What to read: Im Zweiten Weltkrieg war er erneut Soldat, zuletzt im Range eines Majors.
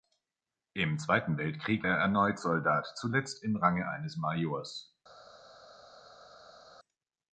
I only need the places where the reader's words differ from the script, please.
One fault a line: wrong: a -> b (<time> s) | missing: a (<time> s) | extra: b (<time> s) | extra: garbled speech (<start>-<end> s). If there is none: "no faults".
missing: war (1.9 s)